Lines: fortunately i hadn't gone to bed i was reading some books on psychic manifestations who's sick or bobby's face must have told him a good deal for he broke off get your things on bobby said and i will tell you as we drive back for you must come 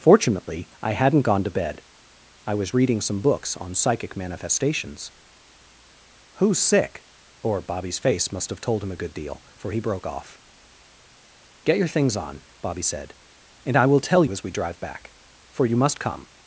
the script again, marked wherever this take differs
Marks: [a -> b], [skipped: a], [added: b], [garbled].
fortunately i hadn't gone to bed i was reading some books on psychic manifestations who's sick or bobby's face must have told him a good deal for he broke off get your things on bobby said and i will tell [skipped: you] as we drive back for you must come